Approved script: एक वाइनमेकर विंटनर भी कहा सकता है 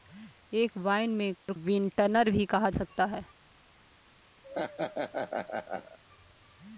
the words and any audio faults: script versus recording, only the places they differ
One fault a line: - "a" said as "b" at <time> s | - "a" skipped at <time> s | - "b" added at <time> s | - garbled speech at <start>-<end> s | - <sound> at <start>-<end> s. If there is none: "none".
- dropout at 1.4-1.5 s
- laugh at 4.4-6.0 s